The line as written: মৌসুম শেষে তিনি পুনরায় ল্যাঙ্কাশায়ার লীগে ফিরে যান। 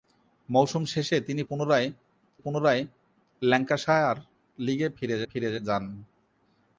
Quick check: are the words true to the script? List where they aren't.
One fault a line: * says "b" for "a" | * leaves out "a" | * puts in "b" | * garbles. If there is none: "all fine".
* puts in "পুনরায়"
* puts in "ফিরে"